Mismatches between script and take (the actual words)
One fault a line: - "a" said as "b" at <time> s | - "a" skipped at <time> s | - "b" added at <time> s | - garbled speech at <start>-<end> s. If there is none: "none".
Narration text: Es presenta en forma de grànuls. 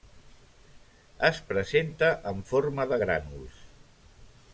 none